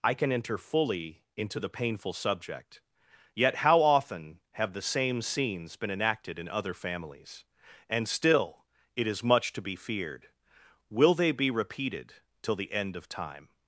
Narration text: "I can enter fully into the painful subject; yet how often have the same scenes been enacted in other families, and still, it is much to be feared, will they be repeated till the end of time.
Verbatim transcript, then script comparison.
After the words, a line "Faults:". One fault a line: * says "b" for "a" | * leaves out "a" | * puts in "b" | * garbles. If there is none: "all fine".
"I can enter fully into the painful subject; yet how often have the same scenes been enacted in other families, and still, it is much to be feared, will they be repeated till the end of time.
Faults:
all fine